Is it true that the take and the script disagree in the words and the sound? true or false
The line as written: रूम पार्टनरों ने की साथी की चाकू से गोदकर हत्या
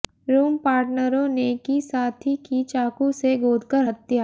false